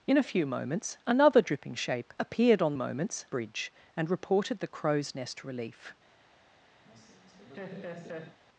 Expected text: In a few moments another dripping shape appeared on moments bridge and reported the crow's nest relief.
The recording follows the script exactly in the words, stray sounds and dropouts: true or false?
false